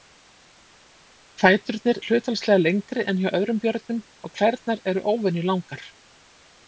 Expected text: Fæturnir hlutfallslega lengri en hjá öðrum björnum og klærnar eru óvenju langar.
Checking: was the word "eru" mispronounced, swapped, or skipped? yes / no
no